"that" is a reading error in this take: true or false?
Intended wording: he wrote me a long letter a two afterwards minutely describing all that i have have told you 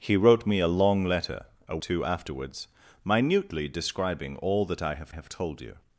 false